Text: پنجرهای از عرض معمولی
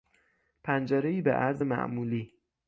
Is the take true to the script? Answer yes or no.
no